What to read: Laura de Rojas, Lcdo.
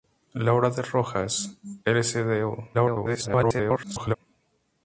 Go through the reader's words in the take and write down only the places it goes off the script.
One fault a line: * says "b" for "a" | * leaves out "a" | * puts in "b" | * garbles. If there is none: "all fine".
* garbles